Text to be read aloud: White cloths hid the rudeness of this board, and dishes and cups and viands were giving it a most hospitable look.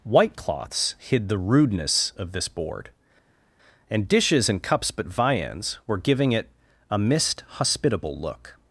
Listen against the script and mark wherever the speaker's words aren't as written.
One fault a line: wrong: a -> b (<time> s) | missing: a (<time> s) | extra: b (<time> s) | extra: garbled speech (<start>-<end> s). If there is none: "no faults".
wrong: and -> but (4.9 s)
wrong: most -> mist (7.0 s)